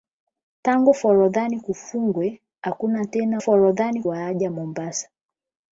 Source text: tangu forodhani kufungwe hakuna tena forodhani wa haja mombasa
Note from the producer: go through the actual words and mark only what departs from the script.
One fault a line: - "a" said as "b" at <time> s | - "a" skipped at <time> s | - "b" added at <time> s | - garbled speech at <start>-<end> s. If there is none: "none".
none